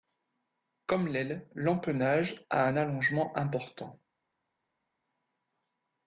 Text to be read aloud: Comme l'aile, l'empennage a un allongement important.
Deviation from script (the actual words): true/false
false